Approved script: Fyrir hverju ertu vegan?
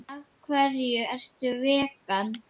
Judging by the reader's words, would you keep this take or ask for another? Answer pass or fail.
fail